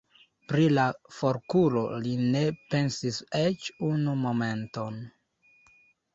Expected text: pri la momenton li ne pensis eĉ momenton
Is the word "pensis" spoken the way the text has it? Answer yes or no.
yes